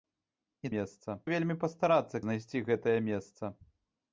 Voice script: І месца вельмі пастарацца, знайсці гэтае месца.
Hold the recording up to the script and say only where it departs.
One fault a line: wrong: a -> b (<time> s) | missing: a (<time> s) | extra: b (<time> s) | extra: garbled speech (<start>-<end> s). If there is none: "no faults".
no faults